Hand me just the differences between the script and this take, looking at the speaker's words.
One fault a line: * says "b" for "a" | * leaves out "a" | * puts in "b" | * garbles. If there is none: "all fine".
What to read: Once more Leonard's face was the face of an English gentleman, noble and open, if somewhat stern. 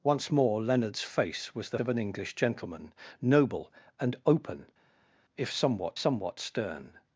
* leaves out "face"
* puts in "somewhat"